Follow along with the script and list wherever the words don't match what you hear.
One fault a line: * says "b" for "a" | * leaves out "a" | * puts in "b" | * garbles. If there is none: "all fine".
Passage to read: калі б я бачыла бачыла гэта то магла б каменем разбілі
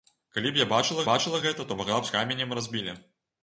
all fine